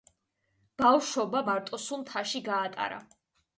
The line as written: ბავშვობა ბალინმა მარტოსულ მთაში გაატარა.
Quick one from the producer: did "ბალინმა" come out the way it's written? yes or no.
no